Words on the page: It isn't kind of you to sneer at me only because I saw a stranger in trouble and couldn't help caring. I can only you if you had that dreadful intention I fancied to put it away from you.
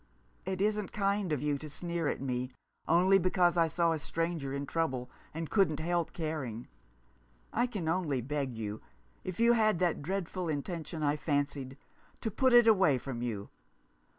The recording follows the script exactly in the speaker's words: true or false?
false